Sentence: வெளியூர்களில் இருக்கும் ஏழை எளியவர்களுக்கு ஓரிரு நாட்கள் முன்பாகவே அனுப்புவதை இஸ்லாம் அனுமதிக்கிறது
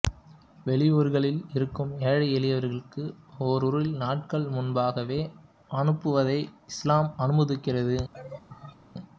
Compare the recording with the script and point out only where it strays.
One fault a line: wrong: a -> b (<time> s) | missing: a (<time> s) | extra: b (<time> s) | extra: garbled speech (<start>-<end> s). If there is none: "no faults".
no faults